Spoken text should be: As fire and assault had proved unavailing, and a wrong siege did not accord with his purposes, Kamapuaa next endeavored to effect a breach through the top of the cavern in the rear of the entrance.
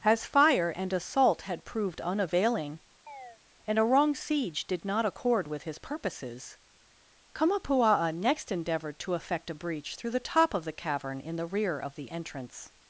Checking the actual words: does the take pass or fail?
pass